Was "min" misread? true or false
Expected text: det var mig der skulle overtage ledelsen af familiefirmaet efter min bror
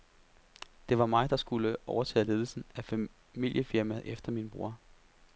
false